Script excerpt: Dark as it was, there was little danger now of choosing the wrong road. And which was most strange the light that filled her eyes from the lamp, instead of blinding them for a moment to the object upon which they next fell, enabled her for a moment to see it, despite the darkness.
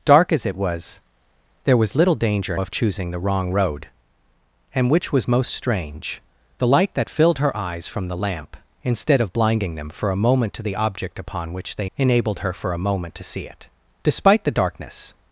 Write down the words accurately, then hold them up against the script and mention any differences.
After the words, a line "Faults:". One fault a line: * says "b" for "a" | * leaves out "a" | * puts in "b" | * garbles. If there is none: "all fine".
Dark as it was, there was little danger of choosing the wrong road. And which was most strange the light that filled her eyes from the lamp, instead of blinding them for a moment to the object upon which they enabled her for a moment to see it, despite the darkness.
Faults:
* leaves out "now"
* leaves out "next fell"